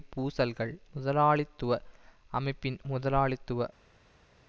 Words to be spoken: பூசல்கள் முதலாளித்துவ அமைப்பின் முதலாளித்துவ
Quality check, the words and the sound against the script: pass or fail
pass